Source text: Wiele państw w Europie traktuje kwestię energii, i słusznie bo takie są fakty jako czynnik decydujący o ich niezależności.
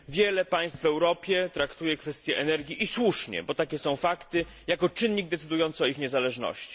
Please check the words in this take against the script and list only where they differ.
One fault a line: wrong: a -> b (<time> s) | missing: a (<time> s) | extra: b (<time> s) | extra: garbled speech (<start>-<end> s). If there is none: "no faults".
no faults